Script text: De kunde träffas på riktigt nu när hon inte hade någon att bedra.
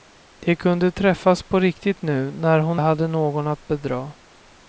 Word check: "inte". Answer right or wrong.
wrong